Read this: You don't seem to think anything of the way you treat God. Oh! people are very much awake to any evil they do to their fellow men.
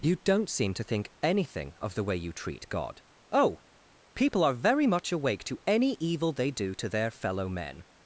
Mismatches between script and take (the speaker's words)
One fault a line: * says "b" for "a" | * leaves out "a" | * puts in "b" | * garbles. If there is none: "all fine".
all fine